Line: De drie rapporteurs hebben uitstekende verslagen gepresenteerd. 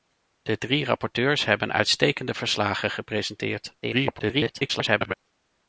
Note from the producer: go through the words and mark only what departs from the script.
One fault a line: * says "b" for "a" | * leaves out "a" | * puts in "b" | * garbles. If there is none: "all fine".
* garbles